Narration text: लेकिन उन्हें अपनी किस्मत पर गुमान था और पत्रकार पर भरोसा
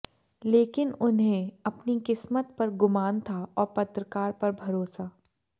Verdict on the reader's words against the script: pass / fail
pass